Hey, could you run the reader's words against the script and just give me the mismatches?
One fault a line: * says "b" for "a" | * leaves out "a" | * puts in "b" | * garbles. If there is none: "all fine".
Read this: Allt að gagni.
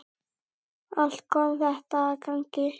* puts in "kom þetta"